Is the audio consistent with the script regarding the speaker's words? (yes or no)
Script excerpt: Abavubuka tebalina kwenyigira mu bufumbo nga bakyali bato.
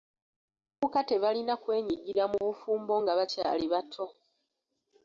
yes